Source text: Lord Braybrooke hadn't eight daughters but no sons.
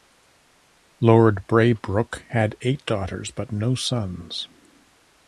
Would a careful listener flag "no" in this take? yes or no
no